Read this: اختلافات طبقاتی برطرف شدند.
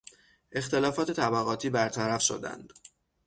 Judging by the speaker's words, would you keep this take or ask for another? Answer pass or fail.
pass